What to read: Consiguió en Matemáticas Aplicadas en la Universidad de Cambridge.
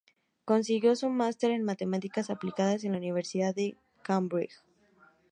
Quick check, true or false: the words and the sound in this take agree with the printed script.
false